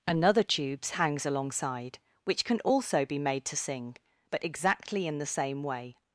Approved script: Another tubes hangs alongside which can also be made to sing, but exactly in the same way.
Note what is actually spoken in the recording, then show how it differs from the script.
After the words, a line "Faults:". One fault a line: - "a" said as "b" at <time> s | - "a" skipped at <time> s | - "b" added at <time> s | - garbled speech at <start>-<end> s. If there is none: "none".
Another tubes hangs alongside which can also be made to sing, but exactly in the same way.
Faults:
none